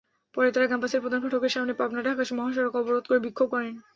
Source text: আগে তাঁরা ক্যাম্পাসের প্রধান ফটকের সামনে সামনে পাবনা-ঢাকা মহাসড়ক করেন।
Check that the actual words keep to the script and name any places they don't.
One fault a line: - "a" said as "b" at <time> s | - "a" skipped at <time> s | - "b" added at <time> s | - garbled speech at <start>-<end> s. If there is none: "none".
- "আগে" said as "পরে" at 0.3 s
- "সামনে" skipped at 1.7 s
- "অবরোধ করে বিক্ষোভ" added at 2.8 s